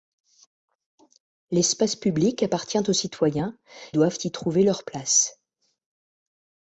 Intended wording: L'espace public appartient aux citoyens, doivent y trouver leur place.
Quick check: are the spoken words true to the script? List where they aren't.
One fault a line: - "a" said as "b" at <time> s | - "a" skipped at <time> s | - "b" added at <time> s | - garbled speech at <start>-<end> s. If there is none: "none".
none